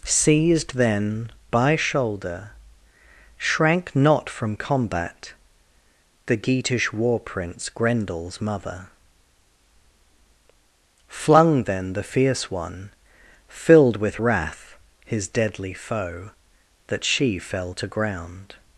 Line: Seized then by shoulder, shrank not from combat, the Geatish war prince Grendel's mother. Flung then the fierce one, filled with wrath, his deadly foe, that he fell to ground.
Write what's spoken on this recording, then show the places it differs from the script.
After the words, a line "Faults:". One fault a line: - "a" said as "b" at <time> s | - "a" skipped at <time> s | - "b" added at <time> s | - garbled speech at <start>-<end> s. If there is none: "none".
Seized then by shoulder, shrank not from combat, the Geatish war prince Grendel's mother. Flung then the fierce one, filled with wrath, his deadly foe, that she fell to ground.
Faults:
- "he" said as "she" at 17.0 s